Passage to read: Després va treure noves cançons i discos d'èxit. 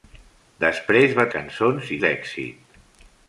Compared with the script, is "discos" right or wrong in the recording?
wrong